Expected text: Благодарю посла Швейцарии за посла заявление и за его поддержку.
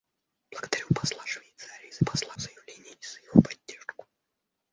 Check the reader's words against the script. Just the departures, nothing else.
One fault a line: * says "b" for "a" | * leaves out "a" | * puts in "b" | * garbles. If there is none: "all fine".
all fine